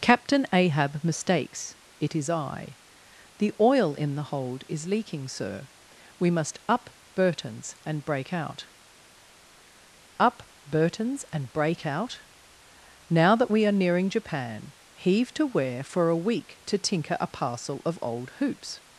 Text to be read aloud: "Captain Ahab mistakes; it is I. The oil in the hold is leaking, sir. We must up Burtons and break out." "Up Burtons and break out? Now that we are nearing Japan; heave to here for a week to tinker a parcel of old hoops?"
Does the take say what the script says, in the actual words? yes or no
no